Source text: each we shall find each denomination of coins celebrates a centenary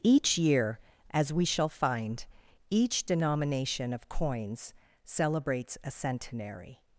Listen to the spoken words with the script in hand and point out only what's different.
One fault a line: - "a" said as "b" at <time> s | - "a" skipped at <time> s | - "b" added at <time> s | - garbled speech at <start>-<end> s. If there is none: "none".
- "year as" added at 0.3 s